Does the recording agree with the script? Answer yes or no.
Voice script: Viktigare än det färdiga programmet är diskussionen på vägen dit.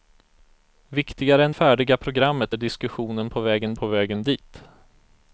no